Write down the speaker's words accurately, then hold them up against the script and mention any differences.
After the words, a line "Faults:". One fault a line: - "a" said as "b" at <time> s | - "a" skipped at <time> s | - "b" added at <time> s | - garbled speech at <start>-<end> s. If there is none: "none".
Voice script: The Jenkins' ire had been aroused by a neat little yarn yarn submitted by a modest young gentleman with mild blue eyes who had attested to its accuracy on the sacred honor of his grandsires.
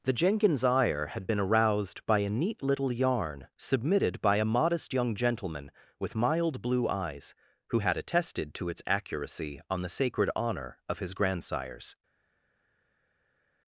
The Jenkins' ire had been aroused by a neat little yarn submitted by a modest young gentleman with mild blue eyes who had attested to its accuracy on the sacred honor of his grandsires.
Faults:
- "yarn" skipped at 3.5 s